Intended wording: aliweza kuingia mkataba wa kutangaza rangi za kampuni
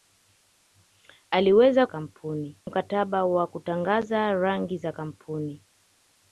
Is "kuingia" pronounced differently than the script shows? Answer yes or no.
yes